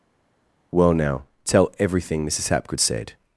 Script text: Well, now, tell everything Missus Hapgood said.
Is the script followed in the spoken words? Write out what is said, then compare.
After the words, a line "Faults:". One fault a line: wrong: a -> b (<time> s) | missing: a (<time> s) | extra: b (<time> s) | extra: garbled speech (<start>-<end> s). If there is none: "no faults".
Well, now, tell everything Missus Hapgood said.
Faults:
no faults